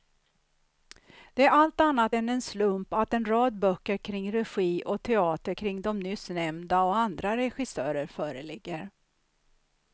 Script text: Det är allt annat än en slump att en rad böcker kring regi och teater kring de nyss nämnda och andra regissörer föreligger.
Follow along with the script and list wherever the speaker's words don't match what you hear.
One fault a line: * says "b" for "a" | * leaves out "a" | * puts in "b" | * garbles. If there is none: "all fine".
all fine